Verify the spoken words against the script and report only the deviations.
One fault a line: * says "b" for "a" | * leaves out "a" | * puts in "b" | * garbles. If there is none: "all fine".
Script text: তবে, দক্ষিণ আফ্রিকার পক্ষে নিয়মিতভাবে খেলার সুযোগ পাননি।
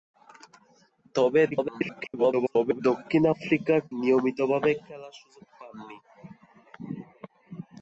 * garbles
* leaves out "পক্ষে"